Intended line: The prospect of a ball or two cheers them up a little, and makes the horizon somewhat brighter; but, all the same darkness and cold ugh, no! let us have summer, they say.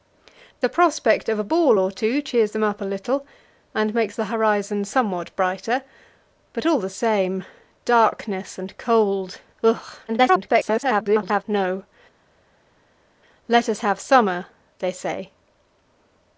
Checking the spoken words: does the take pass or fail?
fail